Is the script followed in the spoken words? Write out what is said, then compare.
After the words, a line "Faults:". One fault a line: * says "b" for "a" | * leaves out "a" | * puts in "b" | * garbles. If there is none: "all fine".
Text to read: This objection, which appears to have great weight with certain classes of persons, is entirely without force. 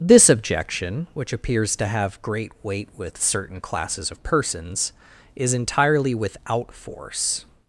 This objection, which appears to have great weight with certain classes of persons, is entirely without force.
Faults:
all fine